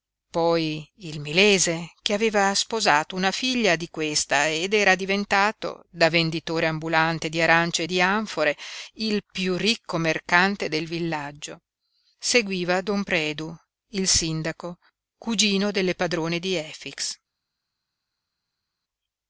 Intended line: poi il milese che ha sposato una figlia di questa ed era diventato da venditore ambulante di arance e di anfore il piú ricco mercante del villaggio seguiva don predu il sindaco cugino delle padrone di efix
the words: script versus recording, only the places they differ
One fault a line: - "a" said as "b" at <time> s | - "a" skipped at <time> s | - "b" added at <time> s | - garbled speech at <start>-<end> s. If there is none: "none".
- "ha" said as "aveva" at 2.1 s